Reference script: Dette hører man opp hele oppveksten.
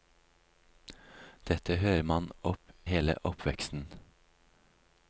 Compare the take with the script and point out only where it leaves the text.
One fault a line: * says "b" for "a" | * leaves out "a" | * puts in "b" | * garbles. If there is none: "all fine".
all fine